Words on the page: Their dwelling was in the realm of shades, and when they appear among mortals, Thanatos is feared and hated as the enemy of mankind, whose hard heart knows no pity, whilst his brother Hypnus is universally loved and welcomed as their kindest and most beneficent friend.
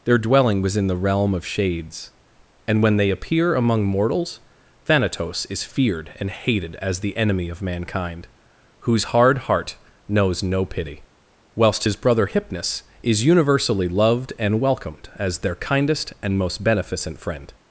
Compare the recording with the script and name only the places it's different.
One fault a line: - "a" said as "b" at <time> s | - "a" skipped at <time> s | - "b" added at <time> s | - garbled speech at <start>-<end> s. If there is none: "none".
none